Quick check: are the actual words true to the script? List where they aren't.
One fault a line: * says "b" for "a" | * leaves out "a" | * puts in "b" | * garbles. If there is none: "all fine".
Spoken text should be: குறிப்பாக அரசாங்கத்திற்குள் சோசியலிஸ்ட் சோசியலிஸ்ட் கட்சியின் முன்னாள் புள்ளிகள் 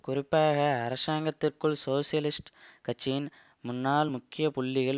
* leaves out "சோசியலிஸ்ட்"
* puts in "முக்கிய"